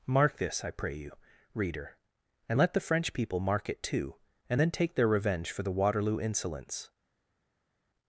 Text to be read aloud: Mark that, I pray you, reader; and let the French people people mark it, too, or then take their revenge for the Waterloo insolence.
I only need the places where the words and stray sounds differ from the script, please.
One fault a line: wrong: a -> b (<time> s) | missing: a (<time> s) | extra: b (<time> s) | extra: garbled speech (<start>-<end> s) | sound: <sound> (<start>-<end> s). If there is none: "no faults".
wrong: that -> this (0.4 s)
missing: people (3.4 s)
wrong: or -> and (4.5 s)